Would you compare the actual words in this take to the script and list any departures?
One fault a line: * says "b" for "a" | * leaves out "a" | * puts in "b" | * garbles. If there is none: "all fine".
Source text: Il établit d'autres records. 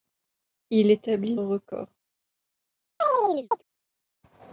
* leaves out "d'autres"